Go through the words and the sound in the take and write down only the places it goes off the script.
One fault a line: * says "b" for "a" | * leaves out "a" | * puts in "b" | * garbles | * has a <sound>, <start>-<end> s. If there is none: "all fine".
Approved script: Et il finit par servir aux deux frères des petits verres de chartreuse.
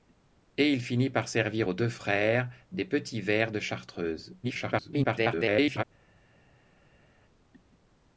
* garbles